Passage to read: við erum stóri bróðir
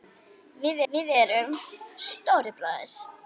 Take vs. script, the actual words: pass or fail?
fail